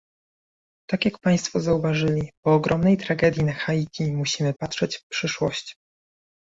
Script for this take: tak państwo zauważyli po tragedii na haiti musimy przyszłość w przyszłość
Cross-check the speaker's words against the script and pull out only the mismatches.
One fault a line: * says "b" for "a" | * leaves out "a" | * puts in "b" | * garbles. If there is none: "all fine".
* puts in "jak"
* puts in "ogromnej"
* says "patrzeć" for "przyszłość"